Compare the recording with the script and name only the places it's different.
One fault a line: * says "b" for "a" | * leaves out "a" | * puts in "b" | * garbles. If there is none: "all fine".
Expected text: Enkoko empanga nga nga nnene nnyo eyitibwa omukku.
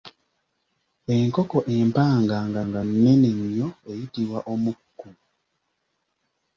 all fine